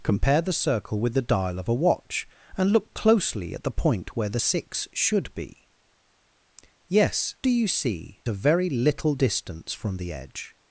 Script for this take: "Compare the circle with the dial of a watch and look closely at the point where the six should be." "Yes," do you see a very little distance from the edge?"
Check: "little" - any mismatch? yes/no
no